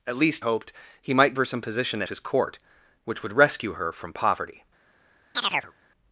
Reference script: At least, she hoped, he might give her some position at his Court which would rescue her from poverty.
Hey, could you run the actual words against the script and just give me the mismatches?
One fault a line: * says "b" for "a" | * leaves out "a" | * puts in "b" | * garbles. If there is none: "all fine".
* leaves out "she"
* leaves out "give"